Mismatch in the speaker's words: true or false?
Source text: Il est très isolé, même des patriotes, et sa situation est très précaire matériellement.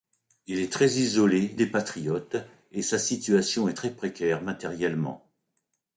true